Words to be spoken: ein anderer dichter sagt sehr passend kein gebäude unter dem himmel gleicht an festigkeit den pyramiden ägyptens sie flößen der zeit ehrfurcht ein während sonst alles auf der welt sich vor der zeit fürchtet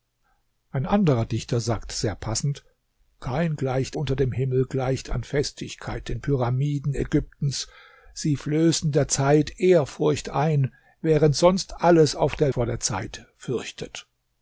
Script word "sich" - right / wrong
wrong